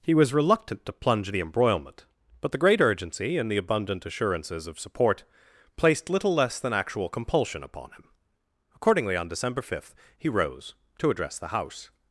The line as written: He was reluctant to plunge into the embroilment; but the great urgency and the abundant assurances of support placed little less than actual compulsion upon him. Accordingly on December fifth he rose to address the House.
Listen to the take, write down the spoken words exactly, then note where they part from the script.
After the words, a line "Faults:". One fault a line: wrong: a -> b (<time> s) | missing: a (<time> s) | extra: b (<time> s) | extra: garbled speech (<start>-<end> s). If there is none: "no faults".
He was reluctant to plunge the embroilment; but the great urgency and the abundant assurances of support placed little less than actual compulsion upon him. Accordingly on December fifth he rose to address the House.
Faults:
missing: into (1.3 s)